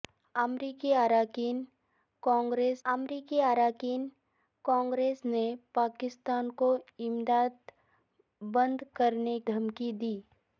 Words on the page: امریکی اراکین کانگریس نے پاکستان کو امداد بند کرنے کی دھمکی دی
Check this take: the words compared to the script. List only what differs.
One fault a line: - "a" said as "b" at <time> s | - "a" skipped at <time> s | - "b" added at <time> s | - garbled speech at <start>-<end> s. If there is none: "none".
- "امریکی اراکین کانگریس" added at 2.8 s
- "کی" skipped at 9.4 s